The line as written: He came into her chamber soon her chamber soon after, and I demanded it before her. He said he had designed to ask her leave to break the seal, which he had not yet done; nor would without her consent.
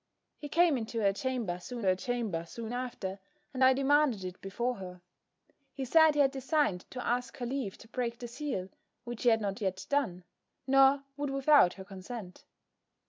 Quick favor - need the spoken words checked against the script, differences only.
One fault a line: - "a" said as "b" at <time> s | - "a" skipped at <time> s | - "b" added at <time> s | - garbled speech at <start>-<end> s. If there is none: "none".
none